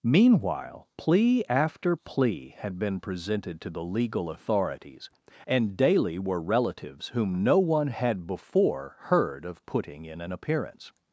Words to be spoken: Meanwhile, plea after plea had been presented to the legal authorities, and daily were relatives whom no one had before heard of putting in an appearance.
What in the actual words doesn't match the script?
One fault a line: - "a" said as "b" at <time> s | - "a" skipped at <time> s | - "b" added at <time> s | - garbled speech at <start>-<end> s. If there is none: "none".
none